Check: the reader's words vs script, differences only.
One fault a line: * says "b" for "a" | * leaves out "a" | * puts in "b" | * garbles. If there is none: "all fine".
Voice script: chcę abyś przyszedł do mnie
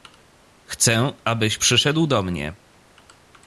all fine